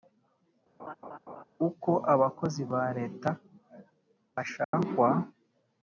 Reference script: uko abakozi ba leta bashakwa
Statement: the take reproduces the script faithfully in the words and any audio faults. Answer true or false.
false